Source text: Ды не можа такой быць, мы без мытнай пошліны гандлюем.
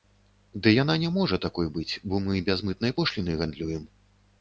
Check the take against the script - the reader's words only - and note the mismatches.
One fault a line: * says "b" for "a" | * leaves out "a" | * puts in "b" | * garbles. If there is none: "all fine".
* puts in "яна"
* puts in "бо"